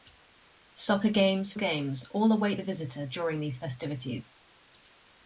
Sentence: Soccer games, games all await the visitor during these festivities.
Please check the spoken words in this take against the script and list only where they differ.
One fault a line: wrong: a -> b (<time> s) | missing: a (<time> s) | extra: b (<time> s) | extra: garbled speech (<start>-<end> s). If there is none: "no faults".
no faults